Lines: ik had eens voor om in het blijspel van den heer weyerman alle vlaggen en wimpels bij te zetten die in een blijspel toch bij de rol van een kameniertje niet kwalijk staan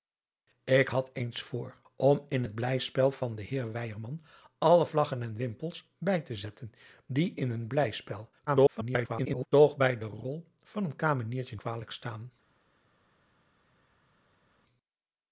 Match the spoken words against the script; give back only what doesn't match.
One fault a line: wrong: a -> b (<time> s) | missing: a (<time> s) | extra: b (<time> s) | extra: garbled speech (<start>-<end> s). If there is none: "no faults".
extra: garbled speech (8.5-9.5 s)
missing: niet (11.6 s)